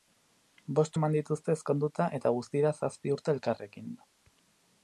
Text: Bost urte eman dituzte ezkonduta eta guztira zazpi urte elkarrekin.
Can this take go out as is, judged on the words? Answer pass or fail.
fail